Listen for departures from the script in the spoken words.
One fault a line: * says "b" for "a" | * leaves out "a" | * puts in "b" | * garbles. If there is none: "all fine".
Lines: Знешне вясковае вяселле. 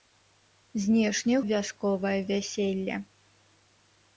all fine